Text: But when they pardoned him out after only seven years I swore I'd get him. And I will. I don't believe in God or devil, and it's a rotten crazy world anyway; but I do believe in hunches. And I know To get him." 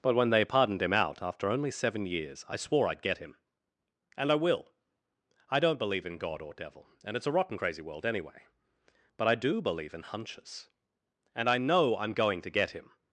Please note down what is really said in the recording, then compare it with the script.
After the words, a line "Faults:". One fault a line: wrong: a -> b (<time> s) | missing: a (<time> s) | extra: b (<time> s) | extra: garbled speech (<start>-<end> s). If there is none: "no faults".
But when they pardoned him out after only seven years I swore I'd get him. And I will. I don't believe in God or devil, and it's a rotten crazy world anyway; but I do believe in hunches. And I know I'm going to get him."
Faults:
extra: I'm going (12.0 s)